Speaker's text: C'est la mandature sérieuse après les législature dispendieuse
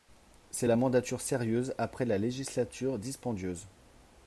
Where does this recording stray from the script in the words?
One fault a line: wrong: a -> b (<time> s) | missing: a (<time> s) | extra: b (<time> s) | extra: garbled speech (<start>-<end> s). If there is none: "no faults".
wrong: les -> la (2.1 s)